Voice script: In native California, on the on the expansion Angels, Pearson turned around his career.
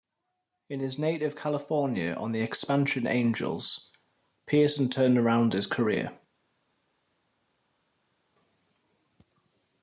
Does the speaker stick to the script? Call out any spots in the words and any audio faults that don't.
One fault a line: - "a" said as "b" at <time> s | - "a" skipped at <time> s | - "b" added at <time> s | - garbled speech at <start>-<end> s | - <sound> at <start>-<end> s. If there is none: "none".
- "his" added at 0.8 s
- "on the" skipped at 2.4 s